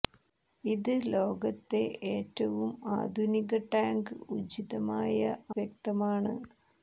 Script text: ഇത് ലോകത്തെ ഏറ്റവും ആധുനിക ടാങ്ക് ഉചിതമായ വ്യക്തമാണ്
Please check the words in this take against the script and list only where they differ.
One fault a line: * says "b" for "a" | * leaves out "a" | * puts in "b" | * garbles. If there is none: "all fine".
all fine